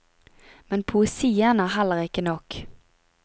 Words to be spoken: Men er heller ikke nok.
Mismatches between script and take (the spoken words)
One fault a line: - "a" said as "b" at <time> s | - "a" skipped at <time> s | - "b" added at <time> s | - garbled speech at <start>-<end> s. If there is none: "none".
- "poesien" added at 0.8 s